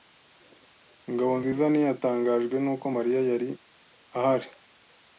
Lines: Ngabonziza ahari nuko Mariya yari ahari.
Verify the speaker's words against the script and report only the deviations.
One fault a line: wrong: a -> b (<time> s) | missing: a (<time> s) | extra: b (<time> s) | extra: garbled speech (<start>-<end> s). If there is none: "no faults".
wrong: ahari -> ntiyatangajwe (1.7 s)